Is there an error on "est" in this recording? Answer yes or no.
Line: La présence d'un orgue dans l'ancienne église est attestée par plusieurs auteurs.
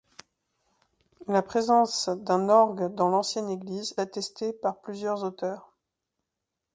yes